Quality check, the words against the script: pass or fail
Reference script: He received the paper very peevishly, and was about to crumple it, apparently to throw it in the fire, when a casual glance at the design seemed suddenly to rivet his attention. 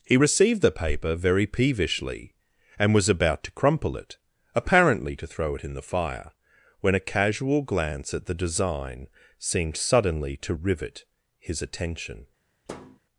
pass